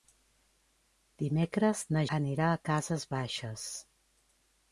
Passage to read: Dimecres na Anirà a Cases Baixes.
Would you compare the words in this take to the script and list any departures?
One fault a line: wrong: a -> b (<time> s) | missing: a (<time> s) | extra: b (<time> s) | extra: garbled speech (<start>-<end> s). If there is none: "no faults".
no faults